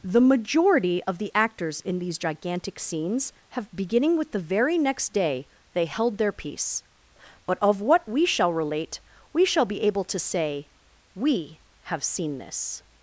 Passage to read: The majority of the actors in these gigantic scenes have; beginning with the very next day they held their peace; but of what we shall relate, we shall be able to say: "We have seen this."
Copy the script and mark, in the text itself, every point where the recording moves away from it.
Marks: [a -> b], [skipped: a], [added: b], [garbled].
The majority of the actors in these gigantic scenes have; beginning with the very next day they held their peace; but of what we shall relate, we shall be able to say: "We have seen this."